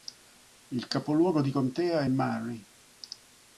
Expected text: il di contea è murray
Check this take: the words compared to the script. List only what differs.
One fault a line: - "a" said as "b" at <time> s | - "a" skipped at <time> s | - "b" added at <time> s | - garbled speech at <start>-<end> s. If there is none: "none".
- "capoluogo" added at 0.9 s